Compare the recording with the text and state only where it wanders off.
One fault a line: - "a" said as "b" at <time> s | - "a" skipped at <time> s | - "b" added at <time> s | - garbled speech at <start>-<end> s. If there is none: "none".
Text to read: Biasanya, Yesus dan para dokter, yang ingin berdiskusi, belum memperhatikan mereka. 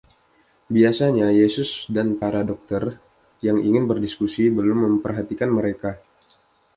none